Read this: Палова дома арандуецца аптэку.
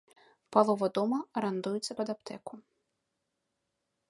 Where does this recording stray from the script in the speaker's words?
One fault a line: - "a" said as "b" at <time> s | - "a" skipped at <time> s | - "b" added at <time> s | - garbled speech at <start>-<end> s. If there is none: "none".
- "пад" added at 2.0 s